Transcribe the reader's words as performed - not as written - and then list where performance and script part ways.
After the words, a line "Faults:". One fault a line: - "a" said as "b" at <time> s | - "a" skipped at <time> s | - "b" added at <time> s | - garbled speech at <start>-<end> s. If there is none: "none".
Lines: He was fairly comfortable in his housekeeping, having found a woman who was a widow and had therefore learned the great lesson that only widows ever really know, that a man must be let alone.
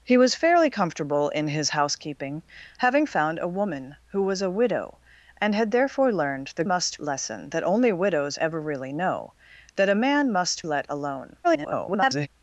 He was fairly comfortable in his housekeeping, having found a woman who was a widow and had therefore learned the must lesson that only widows ever really know, that a man must let alone. [garbled]
Faults:
- "great" said as "must" at 6.6 s
- "be" skipped at 10.6 s
- garbled speech at 11.4-12.3 s